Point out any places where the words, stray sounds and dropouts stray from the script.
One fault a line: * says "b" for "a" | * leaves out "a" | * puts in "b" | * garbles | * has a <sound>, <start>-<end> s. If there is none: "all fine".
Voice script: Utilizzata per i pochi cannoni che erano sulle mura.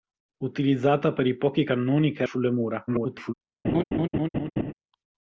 * leaves out "erano"
* garbles
* has a laugh, 3.6-4.7 s